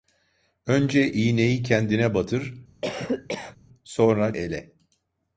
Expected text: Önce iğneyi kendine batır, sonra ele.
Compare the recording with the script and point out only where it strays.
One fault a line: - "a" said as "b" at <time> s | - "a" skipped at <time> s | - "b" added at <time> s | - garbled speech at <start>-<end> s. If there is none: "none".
none